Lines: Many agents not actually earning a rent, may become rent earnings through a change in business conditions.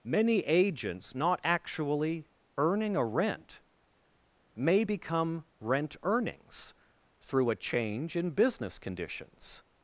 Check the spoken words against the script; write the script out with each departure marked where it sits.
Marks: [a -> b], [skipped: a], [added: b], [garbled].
Many agents not actually earning a rent, may become rent earnings through a change in business conditions.